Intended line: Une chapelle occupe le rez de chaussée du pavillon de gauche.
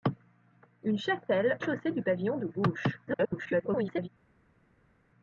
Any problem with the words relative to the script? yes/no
yes